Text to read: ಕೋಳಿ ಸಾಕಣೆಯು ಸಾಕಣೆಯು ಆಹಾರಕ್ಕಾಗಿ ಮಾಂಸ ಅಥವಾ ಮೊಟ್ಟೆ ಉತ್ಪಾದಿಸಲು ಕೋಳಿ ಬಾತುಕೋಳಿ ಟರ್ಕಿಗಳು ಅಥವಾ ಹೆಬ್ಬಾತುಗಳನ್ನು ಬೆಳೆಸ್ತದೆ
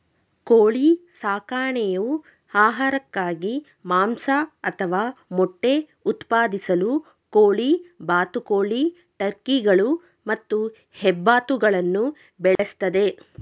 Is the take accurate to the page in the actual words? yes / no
no